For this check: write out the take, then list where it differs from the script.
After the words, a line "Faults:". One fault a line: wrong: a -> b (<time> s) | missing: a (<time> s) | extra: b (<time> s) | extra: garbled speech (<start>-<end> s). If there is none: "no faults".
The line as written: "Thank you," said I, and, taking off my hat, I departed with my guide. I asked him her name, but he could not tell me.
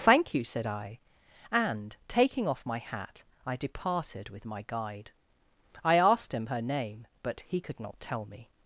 "Thank you," said I, and, taking off my hat, I departed with my guide. I asked him her name, but he could not tell me.
Faults:
no faults